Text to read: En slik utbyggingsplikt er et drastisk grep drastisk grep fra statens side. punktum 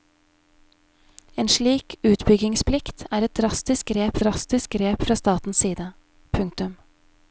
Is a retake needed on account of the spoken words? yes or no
no